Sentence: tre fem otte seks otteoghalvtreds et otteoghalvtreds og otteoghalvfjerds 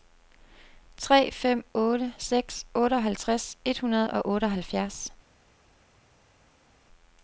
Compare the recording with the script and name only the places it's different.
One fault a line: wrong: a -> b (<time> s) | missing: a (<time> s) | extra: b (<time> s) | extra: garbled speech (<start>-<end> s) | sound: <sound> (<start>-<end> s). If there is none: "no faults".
wrong: otteoghalvtreds -> hundrede (3.8 s)